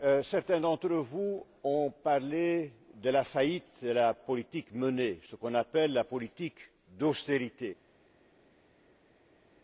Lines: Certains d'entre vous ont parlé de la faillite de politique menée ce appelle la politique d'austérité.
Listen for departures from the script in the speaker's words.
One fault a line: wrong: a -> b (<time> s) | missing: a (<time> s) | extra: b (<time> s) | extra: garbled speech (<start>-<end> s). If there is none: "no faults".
extra: la (3.9 s)
extra: qu'on (5.3 s)